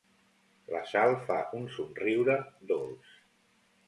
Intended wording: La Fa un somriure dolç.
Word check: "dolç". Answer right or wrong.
right